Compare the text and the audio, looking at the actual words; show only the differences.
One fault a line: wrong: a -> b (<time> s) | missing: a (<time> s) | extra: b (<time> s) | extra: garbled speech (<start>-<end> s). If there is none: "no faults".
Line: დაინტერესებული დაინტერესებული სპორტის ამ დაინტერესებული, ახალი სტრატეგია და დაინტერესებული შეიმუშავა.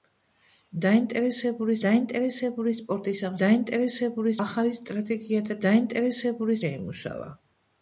no faults